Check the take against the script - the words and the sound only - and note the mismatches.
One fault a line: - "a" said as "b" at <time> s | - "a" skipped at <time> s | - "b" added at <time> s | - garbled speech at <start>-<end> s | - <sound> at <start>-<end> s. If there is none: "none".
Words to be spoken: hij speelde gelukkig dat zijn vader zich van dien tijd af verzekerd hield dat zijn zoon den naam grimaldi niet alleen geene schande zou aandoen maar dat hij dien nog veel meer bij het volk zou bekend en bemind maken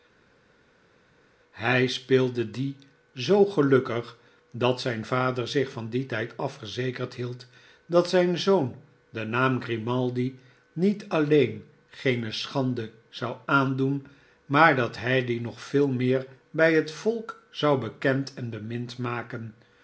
- "die zoo" added at 2.5 s